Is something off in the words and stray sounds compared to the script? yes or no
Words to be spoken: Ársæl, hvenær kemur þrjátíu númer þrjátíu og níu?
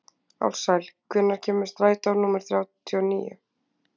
yes